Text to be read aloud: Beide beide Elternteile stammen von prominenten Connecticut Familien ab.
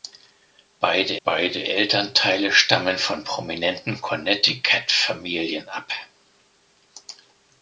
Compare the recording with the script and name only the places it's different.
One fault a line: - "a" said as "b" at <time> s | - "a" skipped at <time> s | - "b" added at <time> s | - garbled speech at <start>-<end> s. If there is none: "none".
none